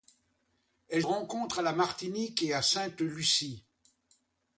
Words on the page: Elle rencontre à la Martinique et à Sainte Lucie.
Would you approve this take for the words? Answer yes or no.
yes